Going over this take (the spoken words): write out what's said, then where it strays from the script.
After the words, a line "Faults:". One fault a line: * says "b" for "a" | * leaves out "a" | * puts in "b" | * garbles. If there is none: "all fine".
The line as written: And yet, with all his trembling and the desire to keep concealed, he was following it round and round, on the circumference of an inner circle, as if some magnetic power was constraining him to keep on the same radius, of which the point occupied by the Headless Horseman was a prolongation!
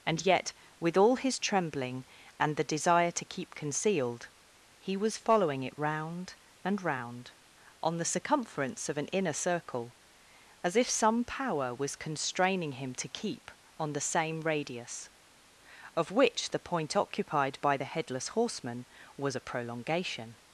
And yet, with all his trembling and the desire to keep concealed, he was following it round and round, on the circumference of an inner circle, as if some power was constraining him to keep on the same radius, of which the point occupied by the Headless Horseman was a prolongation!
Faults:
* leaves out "magnetic"